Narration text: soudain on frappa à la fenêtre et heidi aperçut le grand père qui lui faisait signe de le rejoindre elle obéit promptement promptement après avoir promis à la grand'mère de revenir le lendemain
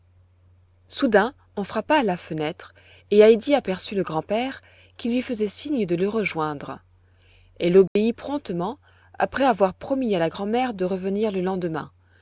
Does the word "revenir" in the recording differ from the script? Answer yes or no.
no